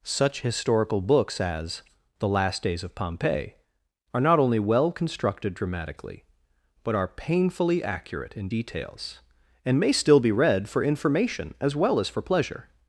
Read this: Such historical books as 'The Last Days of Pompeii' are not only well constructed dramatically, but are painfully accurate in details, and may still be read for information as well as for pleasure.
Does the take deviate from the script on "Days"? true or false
false